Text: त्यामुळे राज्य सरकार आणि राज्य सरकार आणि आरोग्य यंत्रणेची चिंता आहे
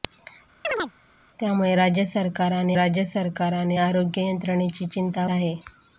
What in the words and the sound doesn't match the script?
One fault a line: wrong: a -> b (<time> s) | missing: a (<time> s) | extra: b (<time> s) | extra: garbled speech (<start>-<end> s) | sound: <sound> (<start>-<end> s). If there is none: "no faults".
sound: chirp (0.6-0.9 s)